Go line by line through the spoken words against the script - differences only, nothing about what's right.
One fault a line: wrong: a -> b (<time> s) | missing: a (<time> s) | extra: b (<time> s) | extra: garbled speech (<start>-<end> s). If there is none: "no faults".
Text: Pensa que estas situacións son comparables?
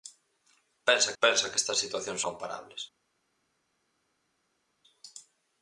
extra: pensa (1.2 s)
missing: son (2.2 s)